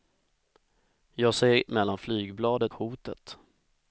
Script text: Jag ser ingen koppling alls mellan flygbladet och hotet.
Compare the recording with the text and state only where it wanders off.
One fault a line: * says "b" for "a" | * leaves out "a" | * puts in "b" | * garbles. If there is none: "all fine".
* leaves out "ingen koppling alls"
* leaves out "och"